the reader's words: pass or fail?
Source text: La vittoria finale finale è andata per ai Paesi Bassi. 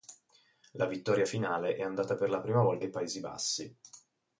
fail